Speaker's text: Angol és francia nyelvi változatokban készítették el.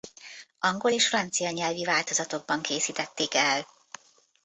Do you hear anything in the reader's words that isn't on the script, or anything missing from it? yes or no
no